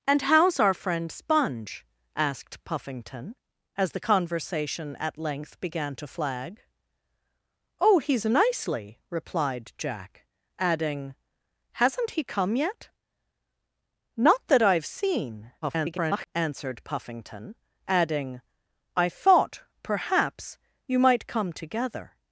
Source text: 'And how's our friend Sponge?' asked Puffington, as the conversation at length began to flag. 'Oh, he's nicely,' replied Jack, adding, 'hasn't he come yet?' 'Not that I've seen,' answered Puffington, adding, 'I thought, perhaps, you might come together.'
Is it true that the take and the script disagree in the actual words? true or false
true